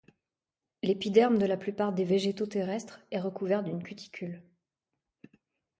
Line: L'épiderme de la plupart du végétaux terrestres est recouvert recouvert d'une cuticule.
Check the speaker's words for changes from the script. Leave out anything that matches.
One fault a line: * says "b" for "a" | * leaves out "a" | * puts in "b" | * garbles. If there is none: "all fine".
* says "des" for "du"
* leaves out "recouvert"